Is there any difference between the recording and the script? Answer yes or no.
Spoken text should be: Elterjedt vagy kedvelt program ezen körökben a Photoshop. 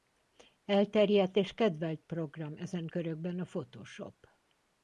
yes